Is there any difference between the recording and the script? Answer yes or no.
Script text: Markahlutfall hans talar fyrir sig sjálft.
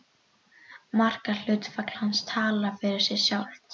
no